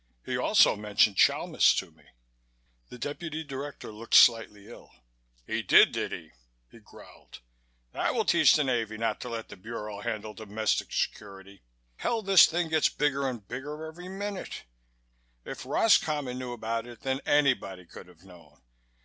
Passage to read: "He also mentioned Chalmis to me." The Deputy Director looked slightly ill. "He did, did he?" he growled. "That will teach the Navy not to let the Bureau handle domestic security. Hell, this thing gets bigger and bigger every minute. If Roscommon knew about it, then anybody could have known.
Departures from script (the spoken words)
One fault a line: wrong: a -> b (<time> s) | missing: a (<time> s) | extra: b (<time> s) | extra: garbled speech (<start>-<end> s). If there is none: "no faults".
no faults